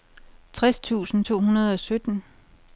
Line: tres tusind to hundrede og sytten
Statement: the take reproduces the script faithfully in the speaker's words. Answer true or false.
true